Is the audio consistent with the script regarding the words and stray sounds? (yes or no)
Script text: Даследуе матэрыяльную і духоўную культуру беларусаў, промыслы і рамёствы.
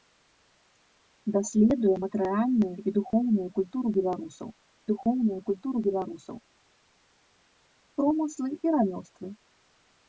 no